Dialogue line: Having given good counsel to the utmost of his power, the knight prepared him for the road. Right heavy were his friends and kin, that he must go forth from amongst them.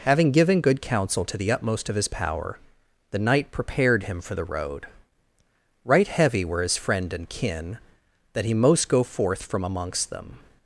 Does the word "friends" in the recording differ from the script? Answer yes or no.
yes